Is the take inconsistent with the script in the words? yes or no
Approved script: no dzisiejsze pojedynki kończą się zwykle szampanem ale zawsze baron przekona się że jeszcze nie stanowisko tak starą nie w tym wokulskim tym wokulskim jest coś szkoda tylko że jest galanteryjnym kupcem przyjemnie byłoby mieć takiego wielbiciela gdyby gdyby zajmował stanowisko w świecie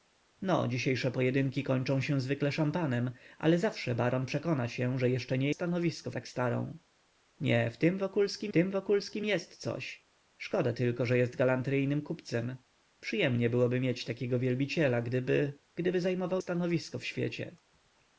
no